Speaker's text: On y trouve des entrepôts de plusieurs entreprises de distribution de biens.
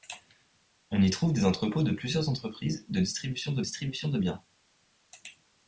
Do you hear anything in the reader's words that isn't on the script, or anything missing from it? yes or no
yes